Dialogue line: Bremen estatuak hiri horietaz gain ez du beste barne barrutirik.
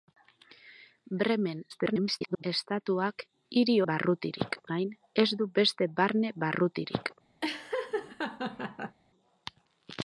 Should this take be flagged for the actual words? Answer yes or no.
yes